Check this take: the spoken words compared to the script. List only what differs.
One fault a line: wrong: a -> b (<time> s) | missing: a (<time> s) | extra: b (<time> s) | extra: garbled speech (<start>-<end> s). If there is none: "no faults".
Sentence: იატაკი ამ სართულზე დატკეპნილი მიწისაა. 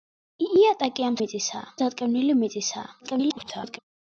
wrong: სართულზე -> მიწისაა (1.2 s)
extra: garbled speech (3.0-3.8 s)